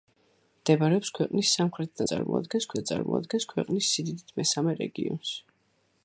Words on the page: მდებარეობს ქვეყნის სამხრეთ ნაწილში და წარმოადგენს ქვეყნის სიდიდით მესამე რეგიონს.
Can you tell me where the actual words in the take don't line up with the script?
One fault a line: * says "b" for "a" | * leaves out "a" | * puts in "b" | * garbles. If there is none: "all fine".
* says "წარმოადგენს" for "ნაწილში"